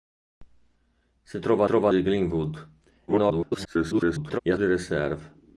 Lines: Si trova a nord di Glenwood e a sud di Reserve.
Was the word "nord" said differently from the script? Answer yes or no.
yes